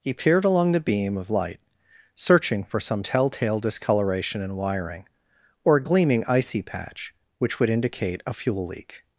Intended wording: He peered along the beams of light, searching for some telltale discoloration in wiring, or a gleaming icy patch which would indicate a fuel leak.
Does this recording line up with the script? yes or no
no